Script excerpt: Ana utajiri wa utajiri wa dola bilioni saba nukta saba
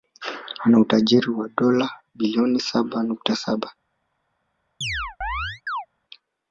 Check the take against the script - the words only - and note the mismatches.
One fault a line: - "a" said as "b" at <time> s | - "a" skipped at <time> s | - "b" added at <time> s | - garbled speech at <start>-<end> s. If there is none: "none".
- "utajiri wa" skipped at 1.5 s